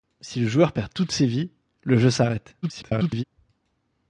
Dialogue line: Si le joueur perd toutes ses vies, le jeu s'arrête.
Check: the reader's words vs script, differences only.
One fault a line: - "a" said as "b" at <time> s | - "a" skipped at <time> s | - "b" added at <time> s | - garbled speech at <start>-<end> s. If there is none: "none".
- garbled speech at 2.6-3.2 s